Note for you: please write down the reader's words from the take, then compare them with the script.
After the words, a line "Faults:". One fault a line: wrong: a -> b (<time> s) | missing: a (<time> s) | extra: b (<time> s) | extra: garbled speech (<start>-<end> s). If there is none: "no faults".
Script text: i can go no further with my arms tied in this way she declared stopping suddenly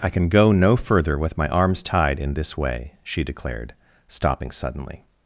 i can go no further with my arms tied in this way she declared stopping suddenly
Faults:
no faults